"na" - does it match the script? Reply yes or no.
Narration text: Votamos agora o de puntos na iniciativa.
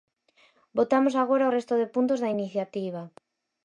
no